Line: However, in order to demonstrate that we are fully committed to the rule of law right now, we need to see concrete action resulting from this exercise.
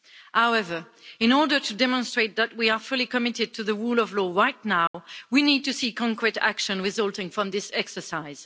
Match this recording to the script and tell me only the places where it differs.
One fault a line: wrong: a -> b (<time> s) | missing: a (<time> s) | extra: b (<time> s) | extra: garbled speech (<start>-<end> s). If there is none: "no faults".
no faults